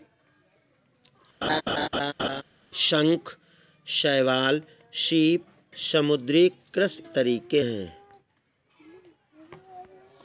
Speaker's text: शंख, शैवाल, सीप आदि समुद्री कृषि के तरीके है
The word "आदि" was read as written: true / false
false